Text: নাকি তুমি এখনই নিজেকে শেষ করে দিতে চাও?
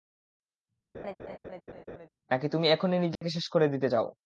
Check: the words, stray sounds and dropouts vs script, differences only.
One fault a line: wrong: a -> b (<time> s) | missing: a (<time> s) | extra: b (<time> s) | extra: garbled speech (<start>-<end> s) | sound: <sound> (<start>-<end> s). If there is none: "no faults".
sound: laugh (0.9-2.1 s)
sound: dropout (3.2-3.2 s)